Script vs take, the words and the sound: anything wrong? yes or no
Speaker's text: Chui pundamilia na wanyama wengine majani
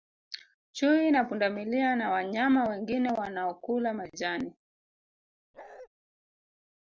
yes